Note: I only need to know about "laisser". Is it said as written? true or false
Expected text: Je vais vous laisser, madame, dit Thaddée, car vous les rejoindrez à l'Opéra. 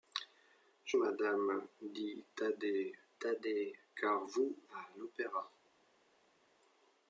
false